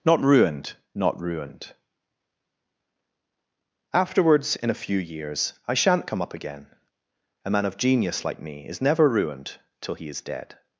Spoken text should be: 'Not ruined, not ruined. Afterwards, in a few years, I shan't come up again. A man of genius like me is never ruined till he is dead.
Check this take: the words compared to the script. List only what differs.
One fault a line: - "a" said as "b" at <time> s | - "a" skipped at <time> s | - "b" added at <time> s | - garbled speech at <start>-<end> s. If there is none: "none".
none